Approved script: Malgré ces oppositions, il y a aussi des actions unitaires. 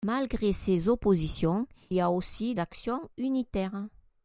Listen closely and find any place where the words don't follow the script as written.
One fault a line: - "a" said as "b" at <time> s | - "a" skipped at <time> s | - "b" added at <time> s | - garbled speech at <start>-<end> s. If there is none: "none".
- "il" skipped at 1.7 s
- "des" skipped at 2.5 s